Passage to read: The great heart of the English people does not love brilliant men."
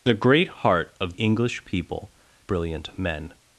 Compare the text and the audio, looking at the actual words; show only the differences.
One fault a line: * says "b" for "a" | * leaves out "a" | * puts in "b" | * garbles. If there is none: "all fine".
* leaves out "the"
* leaves out "does not love"